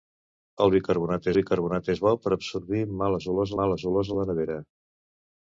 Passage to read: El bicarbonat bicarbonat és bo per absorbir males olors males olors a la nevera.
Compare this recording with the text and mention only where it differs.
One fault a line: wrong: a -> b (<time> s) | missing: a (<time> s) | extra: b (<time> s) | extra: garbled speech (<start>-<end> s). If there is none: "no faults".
no faults